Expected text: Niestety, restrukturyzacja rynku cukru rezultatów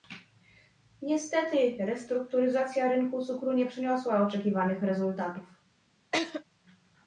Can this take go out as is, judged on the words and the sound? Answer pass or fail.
fail